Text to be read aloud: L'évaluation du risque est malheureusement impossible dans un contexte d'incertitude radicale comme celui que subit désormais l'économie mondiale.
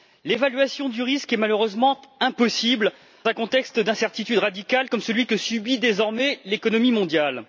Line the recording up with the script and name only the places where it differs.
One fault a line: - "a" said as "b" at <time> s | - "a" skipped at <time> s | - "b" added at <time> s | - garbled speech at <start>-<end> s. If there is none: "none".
- "dans" skipped at 2.9 s